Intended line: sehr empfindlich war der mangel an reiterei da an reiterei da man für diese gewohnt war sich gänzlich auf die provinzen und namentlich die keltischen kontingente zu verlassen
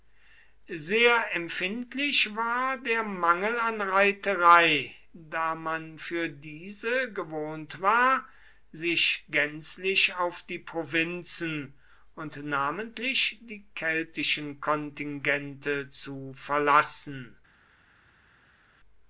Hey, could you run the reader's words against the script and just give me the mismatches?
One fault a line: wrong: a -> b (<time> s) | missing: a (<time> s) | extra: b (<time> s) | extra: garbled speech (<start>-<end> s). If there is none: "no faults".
missing: an reiterei da (5.5 s)